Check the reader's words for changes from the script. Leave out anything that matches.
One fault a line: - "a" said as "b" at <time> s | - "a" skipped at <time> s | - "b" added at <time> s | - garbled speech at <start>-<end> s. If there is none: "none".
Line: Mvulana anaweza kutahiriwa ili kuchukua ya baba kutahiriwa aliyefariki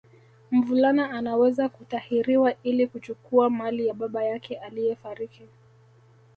- "mali" added at 3.5 s
- "kutahiriwa" said as "yake" at 4.2 s